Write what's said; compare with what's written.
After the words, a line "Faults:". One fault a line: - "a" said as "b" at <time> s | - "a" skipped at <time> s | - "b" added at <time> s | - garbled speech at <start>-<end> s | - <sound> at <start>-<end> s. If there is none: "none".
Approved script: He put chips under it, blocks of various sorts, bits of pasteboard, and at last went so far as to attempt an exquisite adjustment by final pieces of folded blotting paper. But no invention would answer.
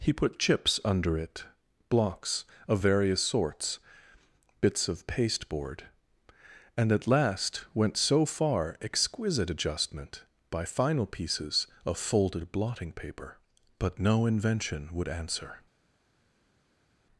He put chips under it, blocks of various sorts, bits of pasteboard, and at last went so far exquisite adjustment by final pieces of folded blotting paper. But no invention would answer.
Faults:
- "as to attempt an" skipped at 8.8 s